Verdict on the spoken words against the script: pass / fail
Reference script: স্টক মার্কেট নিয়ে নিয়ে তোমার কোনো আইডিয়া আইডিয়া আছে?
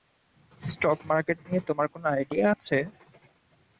fail